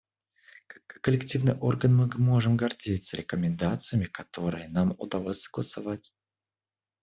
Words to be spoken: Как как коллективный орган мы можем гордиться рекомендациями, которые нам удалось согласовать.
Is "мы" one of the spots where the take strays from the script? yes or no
no